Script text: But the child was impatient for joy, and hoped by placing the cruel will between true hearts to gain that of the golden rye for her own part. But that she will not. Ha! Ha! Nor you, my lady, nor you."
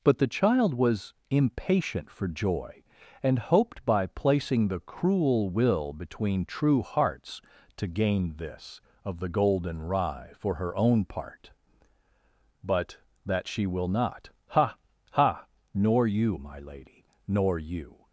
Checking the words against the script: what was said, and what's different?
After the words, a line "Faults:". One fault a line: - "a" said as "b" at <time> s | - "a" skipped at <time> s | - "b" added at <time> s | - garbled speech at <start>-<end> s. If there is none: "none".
But the child was impatient for joy, and hoped by placing the cruel will between true hearts to gain this of the golden rye for her own part. But that she will not. Ha! Ha! Nor you, my lady, nor you."
Faults:
- "that" said as "this" at 8.4 s